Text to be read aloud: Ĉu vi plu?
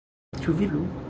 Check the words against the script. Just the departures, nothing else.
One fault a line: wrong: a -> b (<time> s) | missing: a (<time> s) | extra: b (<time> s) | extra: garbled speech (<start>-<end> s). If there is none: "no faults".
no faults